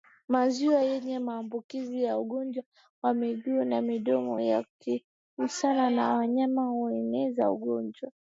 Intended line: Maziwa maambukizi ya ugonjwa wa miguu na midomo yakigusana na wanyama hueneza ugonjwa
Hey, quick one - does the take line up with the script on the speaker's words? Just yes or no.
no